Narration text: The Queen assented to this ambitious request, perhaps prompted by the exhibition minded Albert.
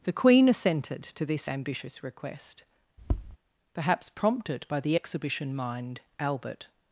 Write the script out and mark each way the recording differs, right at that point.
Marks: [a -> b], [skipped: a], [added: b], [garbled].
The Queen assented to this ambitious request, perhaps prompted by the exhibition [minded -> mind] Albert.